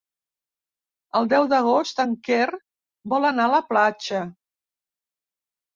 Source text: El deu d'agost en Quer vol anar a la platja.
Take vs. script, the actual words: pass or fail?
pass